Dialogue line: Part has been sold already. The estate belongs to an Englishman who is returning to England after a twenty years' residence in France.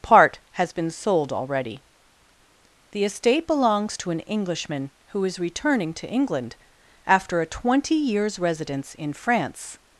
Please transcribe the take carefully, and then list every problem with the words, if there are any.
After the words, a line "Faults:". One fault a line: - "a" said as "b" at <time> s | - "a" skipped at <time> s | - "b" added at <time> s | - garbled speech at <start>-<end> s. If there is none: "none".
Part has been sold already. The estate belongs to an Englishman who is returning to England after a twenty years' residence in France.
Faults:
none